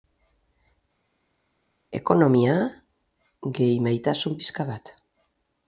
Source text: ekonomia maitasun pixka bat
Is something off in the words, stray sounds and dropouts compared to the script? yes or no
yes